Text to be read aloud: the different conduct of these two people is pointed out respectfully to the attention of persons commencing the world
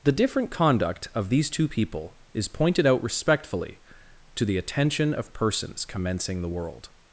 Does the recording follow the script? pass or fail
pass